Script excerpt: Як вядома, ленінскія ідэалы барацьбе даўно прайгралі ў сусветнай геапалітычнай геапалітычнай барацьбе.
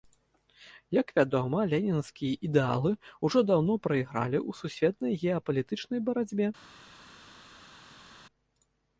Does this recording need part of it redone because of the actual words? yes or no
yes